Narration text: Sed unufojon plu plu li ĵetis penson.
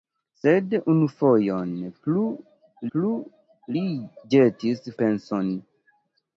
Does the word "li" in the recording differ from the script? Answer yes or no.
no